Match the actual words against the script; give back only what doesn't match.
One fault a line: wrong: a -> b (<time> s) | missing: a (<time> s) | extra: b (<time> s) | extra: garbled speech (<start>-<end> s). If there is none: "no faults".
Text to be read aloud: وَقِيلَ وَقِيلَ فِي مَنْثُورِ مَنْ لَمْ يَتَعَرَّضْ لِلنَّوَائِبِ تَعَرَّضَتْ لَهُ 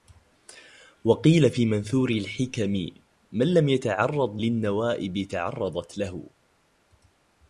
missing: وَقِيلَ (1.5 s)
extra: الْحِكَمِ (2.1 s)